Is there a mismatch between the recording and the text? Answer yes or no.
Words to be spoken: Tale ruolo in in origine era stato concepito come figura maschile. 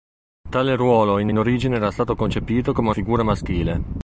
no